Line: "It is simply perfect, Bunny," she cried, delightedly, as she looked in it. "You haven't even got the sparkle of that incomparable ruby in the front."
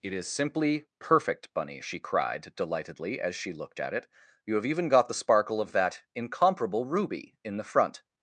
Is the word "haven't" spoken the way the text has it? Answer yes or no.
no